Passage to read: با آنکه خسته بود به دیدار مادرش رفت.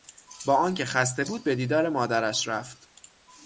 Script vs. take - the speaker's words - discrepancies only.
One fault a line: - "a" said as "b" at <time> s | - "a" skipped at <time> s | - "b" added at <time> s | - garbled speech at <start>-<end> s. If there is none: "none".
none